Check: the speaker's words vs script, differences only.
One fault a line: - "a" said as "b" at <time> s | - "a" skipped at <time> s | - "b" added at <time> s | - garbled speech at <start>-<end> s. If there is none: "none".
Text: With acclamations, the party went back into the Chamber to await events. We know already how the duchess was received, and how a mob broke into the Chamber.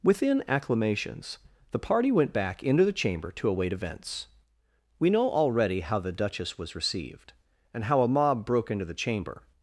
- "With" said as "Within" at 0.0 s